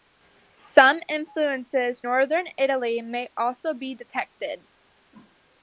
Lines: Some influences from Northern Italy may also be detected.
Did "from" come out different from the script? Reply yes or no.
yes